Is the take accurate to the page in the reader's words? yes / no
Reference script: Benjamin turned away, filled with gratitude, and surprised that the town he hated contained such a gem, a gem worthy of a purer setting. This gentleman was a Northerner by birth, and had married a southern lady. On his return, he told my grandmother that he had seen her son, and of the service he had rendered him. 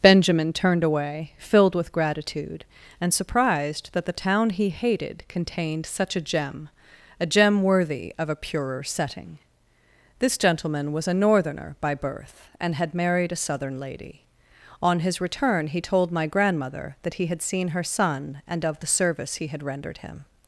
yes